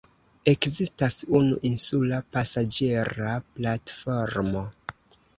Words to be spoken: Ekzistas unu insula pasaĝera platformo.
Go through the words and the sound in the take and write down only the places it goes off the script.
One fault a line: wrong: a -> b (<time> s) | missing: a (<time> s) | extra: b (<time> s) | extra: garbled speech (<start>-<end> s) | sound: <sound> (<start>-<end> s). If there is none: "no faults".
no faults